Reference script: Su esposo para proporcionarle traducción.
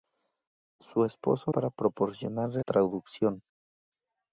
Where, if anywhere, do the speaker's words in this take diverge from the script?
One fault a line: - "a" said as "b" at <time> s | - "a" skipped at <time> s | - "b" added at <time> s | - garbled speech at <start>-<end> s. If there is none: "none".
none